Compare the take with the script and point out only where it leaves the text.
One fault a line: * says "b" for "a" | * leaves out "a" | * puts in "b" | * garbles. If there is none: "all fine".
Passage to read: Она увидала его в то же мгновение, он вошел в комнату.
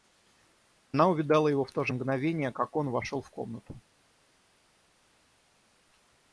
* puts in "как"